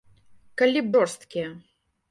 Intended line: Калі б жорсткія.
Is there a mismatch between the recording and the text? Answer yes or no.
no